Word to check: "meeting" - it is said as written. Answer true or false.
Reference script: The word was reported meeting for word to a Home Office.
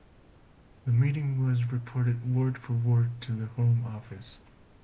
false